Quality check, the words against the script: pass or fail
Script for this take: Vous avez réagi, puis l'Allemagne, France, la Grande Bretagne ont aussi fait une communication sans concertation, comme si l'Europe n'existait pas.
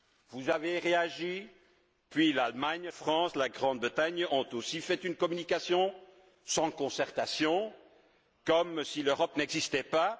pass